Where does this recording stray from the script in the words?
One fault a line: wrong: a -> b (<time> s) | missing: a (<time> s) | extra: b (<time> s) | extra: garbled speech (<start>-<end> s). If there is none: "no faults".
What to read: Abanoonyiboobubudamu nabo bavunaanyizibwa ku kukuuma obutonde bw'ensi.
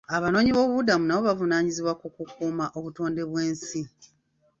no faults